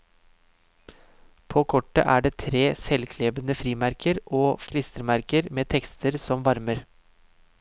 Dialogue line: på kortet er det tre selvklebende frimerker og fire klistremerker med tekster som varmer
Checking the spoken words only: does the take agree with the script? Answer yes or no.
no